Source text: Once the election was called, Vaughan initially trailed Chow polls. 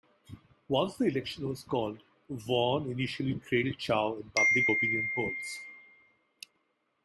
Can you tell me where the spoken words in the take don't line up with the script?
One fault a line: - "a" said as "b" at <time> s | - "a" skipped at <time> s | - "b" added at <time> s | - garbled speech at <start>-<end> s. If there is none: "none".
- "in public opinion" added at 4.1 s